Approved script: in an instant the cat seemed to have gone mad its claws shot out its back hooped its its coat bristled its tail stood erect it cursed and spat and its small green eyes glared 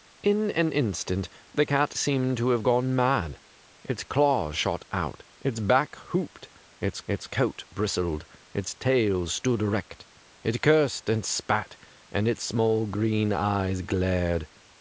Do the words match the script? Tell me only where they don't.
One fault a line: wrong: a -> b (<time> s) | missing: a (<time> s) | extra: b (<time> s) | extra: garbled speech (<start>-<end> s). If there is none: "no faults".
no faults